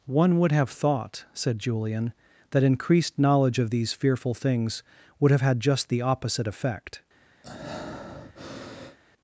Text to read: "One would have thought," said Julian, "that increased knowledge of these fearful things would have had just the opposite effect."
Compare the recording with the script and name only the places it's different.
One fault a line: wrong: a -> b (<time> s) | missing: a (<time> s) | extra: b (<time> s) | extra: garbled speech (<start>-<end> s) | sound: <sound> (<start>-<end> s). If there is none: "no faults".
sound: breath (7.4-9.0 s)